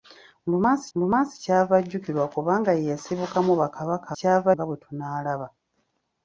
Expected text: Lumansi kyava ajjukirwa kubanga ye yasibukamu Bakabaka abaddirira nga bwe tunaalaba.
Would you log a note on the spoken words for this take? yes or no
yes